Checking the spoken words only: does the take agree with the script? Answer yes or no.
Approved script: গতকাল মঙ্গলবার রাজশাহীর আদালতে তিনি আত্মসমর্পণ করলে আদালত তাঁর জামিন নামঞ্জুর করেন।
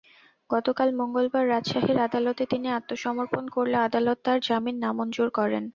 yes